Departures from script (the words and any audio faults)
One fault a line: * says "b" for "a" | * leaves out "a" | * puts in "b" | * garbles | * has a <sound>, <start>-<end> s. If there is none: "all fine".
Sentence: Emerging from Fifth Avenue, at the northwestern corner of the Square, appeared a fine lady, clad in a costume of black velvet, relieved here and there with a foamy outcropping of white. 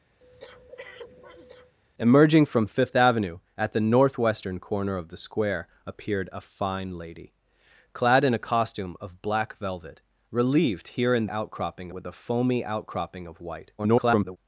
* has a breath, 0.2-1.7 s
* says "outcropping" for "there"
* garbles